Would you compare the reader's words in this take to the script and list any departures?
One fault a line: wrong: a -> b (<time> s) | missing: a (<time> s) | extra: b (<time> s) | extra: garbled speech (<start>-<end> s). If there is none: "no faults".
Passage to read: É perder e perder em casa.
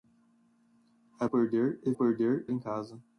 no faults